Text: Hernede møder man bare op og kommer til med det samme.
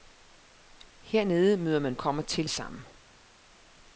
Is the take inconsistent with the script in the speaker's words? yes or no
yes